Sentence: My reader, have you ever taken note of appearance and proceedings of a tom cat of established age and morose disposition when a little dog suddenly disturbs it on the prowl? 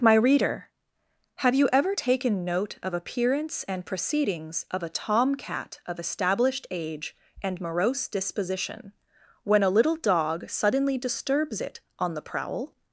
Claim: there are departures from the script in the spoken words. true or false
false